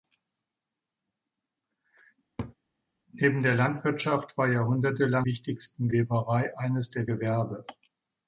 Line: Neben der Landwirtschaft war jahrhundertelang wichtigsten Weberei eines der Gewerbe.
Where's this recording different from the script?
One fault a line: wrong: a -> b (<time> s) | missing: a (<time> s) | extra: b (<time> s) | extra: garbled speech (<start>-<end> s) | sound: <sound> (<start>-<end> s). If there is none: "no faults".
sound: laugh (2.4-2.5 s)